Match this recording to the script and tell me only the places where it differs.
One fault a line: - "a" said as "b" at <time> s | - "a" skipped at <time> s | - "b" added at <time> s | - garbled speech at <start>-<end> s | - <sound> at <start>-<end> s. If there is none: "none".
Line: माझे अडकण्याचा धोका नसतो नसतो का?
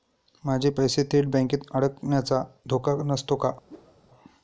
- "पैसे थेट बँकेत" added at 0.7 s
- "नसतो" skipped at 3.4 s
- whoosh at 3.7-4.0 s